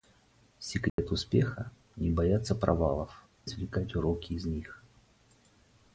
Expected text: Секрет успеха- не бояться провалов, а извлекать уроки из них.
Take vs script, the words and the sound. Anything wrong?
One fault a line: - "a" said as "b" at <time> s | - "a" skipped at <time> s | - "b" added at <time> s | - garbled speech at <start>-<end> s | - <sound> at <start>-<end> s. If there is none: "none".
- dropout at 0.9-1.0 s
- "а" skipped at 3.2 s